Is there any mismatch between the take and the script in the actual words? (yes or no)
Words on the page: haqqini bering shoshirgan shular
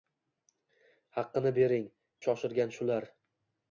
no